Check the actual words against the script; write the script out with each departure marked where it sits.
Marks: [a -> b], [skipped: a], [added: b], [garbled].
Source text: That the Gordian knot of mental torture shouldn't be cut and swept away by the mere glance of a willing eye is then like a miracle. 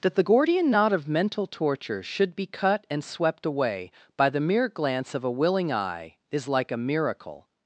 That the Gordian knot of mental torture [shouldn't -> should] be cut and swept away by the mere glance of a willing eye is [skipped: then] like a miracle.